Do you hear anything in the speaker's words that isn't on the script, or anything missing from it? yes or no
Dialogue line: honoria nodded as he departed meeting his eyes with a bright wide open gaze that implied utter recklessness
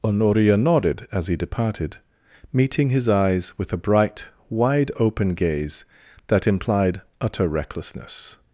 no